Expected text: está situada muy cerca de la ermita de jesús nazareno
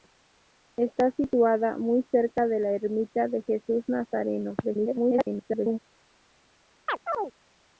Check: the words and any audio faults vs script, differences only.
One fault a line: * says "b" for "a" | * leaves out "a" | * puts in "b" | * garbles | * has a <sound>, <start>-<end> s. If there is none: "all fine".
* garbles
* has a chirp, 6.9-7.3 s